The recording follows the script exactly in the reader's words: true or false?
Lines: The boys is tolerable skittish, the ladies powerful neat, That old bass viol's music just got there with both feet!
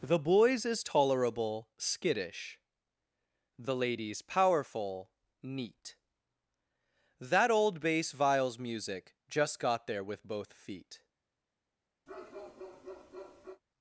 true